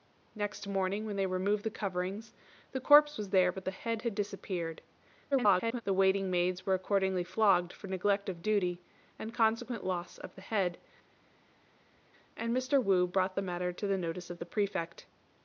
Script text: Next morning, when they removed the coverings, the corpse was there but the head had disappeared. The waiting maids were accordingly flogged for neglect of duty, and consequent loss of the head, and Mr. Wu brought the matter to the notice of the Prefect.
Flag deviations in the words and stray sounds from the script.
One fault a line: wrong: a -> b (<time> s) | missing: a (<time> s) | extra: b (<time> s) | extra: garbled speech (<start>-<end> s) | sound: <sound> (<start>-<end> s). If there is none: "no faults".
extra: garbled speech (5.3-5.8 s)